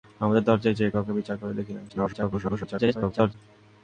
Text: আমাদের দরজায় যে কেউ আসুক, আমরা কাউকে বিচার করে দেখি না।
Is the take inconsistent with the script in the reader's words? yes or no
yes